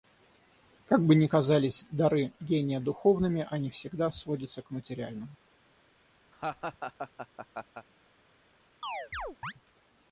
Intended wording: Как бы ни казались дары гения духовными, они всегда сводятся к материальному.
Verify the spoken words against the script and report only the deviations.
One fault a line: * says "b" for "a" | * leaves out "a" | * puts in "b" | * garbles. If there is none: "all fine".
all fine